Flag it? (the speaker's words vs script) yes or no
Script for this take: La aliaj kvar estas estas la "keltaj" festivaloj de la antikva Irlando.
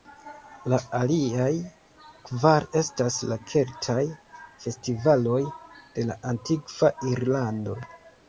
yes